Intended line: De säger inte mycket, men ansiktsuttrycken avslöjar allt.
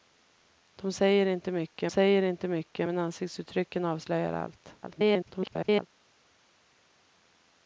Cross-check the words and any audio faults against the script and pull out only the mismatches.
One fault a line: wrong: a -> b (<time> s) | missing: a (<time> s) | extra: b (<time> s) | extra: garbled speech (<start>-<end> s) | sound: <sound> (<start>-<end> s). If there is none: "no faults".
extra: säger inte mycket (1.9 s)
extra: garbled speech (4.8-5.9 s)